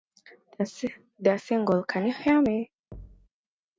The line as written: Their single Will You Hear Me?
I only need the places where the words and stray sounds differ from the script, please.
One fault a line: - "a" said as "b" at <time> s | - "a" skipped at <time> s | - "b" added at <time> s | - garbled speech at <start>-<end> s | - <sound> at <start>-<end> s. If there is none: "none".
- "Will" said as "Can" at 1.8 s
- thud at 2.9-3.3 s